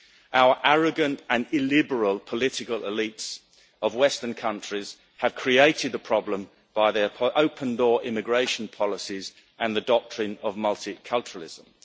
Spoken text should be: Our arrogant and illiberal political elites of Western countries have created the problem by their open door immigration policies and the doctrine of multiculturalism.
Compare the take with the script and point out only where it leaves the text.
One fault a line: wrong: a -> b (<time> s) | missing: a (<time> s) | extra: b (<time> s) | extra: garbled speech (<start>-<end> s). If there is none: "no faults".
no faults